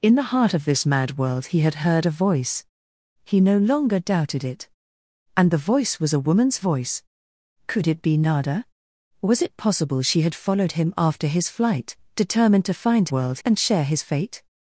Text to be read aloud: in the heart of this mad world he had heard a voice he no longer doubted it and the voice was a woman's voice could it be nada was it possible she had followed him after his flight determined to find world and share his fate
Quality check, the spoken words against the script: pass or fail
pass